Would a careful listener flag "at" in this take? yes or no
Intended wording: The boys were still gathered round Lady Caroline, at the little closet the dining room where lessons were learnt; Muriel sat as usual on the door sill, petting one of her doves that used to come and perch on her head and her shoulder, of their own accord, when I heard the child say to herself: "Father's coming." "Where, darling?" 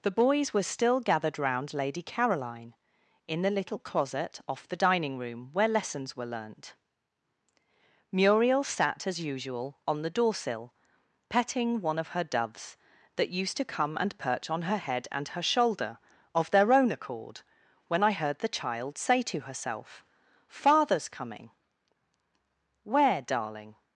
yes